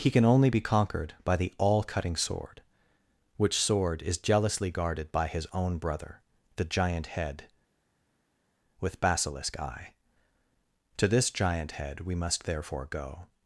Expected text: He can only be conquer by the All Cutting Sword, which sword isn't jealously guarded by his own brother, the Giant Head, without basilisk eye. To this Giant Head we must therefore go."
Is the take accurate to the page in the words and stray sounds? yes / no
no